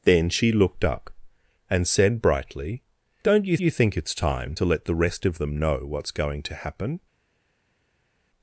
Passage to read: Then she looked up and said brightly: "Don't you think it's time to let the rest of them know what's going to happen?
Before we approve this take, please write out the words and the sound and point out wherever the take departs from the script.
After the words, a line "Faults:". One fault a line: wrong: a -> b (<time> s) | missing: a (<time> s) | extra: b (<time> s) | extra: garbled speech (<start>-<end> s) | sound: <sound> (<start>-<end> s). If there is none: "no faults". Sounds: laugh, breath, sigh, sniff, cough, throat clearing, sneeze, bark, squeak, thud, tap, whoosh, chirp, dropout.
Then she looked up and said brightly: "Don't you you think it's time to let the rest of them know what's going to happen?
Faults:
extra: you (3.6 s)